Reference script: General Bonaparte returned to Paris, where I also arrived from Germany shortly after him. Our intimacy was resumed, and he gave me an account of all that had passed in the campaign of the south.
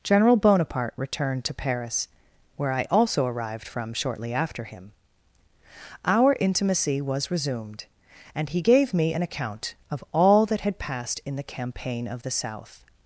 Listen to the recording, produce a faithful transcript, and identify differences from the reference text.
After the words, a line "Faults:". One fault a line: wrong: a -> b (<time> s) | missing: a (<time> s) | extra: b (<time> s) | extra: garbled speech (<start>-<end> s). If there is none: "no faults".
General Bonaparte returned to Paris, where I also arrived from shortly after him. Our intimacy was resumed, and he gave me an account of all that had passed in the campaign of the south.
Faults:
missing: Germany (3.9 s)